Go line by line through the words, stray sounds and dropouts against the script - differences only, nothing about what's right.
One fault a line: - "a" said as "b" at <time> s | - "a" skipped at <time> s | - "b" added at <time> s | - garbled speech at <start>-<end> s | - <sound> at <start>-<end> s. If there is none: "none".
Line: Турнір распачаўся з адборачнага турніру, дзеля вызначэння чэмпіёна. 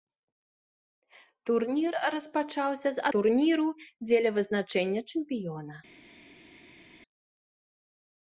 - "адборачнага" skipped at 3.0 s